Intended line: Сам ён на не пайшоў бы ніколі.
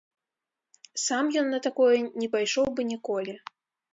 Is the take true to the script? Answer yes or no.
no